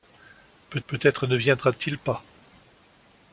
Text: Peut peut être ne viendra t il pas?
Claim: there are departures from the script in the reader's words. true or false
false